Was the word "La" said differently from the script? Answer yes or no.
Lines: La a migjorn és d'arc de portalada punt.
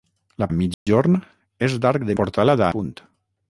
no